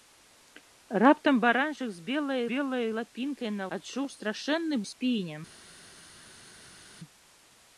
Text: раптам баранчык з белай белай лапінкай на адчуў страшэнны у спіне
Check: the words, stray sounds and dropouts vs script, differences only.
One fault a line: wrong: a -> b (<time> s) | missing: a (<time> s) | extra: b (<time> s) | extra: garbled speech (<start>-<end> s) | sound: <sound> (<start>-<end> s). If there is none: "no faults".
no faults